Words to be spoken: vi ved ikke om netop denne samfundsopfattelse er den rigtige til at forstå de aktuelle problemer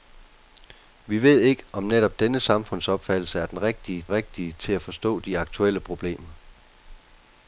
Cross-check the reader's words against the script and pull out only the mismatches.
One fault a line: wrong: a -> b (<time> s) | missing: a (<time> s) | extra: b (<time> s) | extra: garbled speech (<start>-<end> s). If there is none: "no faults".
extra: rigtige (4.1 s)